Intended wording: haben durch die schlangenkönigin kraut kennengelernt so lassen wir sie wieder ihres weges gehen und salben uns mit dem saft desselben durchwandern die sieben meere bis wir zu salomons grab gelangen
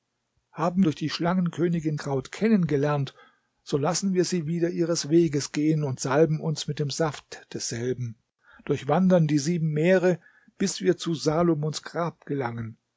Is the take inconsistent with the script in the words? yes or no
no